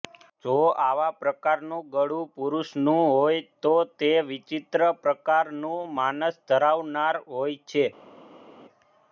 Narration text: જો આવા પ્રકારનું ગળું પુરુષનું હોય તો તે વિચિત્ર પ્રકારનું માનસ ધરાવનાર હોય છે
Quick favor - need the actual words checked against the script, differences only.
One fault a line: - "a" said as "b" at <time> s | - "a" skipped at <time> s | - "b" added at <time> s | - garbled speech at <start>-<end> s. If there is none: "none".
none